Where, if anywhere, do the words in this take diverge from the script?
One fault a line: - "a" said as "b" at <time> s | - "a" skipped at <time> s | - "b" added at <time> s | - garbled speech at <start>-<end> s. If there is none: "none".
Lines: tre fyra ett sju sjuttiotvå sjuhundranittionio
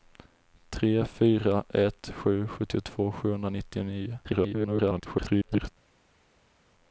- garbled speech at 4.2-5.7 s